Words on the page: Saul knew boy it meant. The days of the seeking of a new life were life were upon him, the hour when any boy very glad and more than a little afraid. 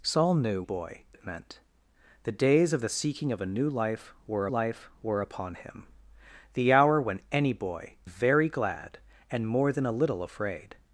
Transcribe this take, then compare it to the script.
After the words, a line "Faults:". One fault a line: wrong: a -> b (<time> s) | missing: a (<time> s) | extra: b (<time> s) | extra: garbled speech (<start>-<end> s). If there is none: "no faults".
Saul knew boy it meant. The days of the seeking of a new life were life were upon him, the hour when any boy very glad and more than a little afraid.
Faults:
no faults